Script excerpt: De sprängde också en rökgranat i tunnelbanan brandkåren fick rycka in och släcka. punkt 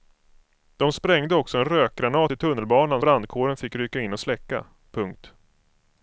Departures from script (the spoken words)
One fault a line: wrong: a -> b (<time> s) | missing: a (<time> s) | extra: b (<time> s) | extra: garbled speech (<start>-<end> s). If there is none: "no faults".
no faults